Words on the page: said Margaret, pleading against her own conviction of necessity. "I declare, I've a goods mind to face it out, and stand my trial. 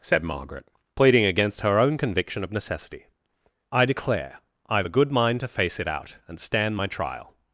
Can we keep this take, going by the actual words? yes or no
no